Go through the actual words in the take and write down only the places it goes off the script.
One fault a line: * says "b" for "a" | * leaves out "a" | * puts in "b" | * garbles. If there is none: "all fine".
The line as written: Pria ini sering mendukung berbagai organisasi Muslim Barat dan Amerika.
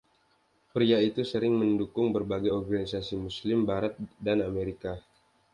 * says "itu" for "ini"